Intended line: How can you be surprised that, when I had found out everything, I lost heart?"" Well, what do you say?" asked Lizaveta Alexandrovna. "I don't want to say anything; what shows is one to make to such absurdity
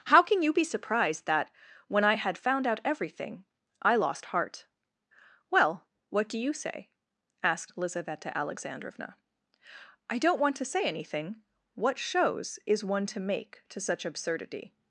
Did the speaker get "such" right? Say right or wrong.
right